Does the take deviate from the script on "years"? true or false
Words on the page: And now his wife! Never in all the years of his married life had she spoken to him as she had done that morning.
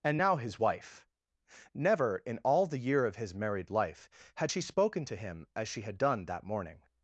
true